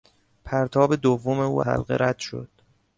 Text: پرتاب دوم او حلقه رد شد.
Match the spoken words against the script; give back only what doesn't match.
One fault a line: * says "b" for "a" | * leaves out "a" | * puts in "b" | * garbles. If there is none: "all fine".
all fine